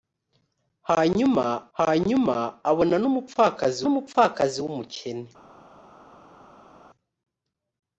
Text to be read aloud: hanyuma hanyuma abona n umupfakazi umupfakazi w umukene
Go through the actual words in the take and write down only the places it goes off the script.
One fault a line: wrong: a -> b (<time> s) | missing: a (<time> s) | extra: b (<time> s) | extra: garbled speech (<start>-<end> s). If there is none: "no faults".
no faults